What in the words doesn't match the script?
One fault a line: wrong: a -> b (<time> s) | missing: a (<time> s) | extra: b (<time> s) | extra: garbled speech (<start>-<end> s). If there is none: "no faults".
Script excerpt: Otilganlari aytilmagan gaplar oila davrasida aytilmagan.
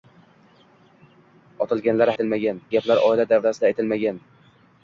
no faults